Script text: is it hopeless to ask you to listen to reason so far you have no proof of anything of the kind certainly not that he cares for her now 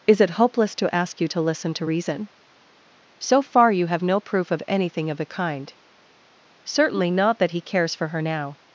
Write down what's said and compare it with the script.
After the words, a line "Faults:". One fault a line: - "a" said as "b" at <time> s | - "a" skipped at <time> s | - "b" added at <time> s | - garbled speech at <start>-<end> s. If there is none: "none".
is it hopeless to ask you to listen to reason so far you have no proof of anything of the kind certainly not that he cares for her now
Faults:
none